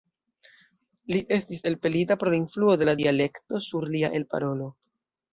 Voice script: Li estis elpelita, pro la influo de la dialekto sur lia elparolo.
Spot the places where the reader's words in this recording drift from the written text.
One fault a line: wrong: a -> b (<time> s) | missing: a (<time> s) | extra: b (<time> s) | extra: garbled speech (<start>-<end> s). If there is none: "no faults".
no faults